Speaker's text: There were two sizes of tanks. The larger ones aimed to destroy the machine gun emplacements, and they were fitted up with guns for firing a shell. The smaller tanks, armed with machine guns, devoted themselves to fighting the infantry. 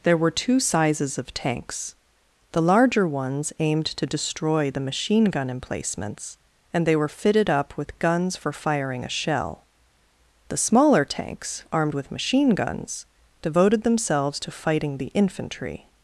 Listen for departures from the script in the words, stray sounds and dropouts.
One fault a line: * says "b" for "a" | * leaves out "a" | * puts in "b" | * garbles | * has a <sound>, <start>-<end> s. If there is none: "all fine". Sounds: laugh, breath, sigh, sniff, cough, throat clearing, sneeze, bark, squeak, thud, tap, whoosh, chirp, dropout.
all fine